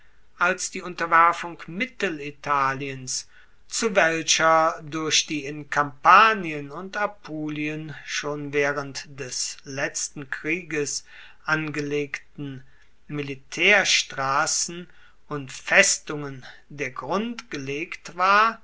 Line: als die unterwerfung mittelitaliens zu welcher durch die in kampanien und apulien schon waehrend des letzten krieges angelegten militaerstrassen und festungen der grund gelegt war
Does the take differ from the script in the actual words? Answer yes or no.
no